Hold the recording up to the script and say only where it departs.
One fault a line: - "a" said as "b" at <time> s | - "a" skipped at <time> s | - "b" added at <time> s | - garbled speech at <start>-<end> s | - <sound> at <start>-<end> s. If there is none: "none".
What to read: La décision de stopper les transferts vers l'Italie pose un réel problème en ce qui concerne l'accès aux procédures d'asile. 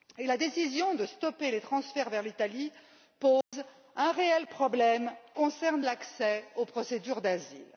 - dropout at 3.4-3.5 s
- "en ce qui" skipped at 5.1 s